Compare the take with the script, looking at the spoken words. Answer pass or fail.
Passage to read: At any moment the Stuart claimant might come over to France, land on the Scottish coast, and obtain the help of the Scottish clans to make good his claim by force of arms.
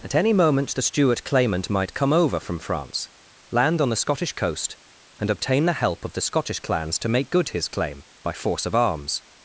fail